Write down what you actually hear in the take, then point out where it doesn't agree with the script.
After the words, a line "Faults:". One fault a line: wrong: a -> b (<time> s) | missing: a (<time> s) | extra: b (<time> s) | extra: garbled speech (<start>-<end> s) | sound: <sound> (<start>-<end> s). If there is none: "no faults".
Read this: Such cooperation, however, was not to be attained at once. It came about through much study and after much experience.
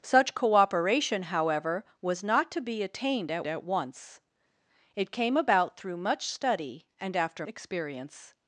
Such cooperation, however, was not to be attained at at once. It came about through much study and after experience.
Faults:
extra: at (3.4 s)
missing: much (7.5 s)